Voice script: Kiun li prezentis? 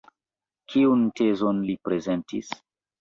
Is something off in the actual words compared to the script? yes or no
yes